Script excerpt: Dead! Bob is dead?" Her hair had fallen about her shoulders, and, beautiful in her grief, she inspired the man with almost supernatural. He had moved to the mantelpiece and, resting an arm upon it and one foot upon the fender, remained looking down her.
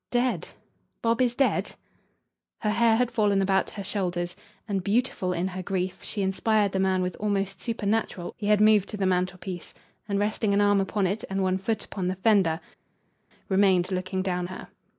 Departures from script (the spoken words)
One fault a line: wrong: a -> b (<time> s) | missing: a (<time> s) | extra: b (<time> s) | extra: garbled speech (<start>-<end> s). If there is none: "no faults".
no faults